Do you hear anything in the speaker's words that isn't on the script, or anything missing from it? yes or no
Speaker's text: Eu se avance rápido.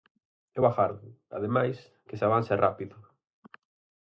yes